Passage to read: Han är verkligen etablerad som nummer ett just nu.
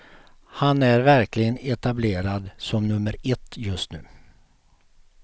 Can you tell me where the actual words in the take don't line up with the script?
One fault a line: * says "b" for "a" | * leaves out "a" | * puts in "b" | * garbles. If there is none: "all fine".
all fine